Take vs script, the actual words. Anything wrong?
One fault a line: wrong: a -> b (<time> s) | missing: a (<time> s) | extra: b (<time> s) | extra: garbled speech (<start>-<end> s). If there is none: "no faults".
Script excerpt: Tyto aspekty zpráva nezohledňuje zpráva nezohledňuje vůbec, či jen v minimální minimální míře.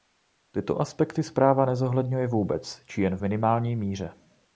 missing: zpráva nezohledňuje (2.3 s)
missing: minimální (3.8 s)